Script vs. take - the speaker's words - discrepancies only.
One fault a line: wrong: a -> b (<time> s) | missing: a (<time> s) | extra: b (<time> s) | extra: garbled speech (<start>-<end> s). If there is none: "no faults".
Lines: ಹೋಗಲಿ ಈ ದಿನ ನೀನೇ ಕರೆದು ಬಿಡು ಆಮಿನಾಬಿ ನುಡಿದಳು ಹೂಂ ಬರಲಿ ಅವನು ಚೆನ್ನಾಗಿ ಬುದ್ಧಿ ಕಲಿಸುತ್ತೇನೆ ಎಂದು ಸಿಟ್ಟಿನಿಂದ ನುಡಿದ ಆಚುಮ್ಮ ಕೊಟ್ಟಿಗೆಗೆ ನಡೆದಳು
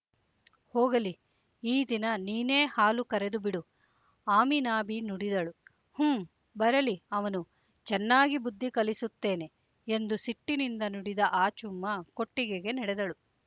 extra: ಹಾಲು (2.7 s)